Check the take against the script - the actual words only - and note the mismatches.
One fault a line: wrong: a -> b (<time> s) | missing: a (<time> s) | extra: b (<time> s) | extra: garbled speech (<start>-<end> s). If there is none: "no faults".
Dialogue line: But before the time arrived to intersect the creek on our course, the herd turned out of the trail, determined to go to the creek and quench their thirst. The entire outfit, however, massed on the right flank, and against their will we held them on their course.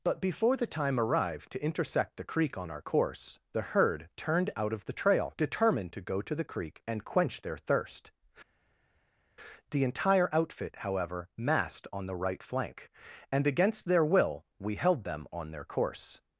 no faults